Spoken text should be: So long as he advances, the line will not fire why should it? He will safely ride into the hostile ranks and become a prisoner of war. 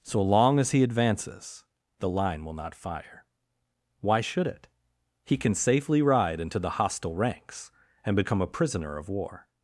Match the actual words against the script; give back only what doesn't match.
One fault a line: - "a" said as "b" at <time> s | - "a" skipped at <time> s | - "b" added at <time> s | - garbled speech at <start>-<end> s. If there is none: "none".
- "will" said as "can" at 5.4 s